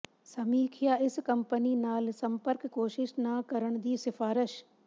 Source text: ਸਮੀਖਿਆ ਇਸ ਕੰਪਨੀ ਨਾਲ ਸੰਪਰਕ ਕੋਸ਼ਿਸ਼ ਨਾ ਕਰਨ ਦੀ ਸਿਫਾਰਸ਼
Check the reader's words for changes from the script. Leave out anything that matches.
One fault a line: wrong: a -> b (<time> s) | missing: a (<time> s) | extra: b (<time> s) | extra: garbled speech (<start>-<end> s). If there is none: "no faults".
no faults